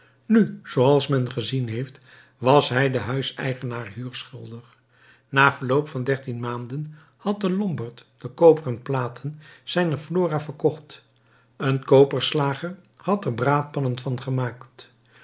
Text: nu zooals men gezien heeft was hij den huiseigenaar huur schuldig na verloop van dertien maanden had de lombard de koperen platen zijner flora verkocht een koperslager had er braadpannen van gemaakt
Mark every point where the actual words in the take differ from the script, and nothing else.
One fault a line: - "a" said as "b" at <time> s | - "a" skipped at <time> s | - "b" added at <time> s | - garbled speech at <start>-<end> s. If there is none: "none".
none